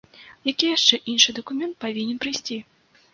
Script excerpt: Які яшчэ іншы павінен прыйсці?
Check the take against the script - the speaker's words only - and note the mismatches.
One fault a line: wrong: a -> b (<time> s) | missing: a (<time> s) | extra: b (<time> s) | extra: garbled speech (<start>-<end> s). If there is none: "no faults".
extra: дакумент (1.4 s)